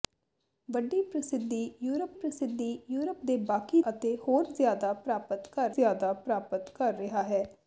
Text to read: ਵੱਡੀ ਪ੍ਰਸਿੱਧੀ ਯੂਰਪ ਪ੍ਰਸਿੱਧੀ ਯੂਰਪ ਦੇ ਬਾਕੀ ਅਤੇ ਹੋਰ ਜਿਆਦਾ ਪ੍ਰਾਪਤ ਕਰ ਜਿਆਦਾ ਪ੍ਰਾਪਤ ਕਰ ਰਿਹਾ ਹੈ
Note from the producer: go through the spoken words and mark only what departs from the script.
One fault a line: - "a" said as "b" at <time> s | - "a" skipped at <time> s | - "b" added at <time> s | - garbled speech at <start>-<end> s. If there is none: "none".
none